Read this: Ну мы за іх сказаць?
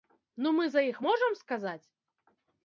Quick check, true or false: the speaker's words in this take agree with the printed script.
false